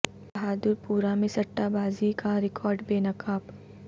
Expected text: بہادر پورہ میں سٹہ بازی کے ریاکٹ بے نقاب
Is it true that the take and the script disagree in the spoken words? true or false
true